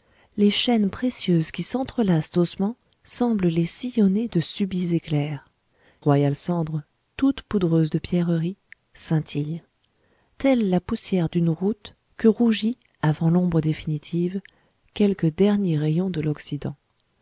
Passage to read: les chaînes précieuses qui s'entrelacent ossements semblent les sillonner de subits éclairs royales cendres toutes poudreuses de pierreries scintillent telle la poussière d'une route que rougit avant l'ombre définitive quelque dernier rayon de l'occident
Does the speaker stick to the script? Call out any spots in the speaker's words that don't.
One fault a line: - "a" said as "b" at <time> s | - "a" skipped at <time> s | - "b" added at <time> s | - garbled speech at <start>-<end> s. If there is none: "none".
none